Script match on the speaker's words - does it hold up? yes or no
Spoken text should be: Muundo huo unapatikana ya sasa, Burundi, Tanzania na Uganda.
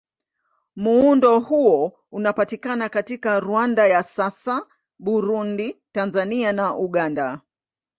no